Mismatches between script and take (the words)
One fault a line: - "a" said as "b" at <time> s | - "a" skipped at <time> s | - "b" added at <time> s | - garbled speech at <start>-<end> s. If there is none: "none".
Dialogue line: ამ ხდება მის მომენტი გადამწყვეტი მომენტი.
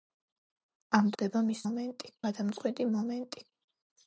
none